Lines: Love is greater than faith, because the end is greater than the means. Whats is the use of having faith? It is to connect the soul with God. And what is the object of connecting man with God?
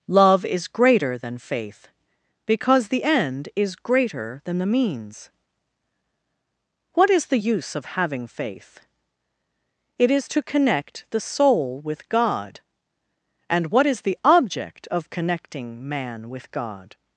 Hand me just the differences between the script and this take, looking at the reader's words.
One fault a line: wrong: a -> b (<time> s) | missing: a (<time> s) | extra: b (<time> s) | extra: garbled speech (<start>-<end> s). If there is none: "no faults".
wrong: Whats -> What (6.9 s)